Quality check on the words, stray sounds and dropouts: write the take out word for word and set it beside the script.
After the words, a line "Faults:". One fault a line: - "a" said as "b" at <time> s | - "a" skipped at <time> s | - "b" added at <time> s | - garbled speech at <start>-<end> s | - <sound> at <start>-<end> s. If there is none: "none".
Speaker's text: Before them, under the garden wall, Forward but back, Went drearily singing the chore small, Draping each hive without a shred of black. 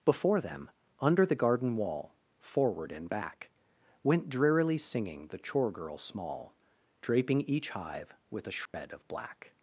Before them, under the garden wall, Forward and back, Went drearily singing the chore girl small, Draping each hive with a shred of black.
Faults:
- "but" said as "and" at 2.9 s
- "girl" added at 5.7 s
- "without" said as "with" at 8.3 s
- dropout at 8.7-8.7 s